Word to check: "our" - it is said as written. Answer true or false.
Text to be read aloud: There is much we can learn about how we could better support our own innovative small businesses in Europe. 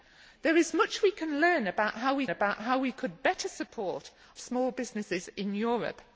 false